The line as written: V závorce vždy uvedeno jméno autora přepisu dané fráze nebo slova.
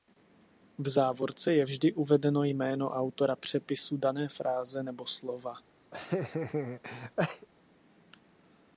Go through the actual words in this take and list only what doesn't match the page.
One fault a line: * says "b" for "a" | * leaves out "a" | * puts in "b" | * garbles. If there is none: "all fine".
* puts in "je"